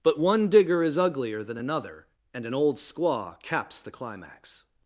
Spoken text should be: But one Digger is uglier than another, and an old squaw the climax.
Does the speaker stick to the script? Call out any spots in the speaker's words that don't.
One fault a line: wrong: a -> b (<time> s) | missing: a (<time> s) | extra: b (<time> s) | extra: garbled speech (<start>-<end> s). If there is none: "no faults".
extra: caps (3.4 s)